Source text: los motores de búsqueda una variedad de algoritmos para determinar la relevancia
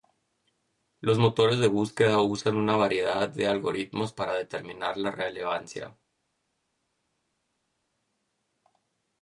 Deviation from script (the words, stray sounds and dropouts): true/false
true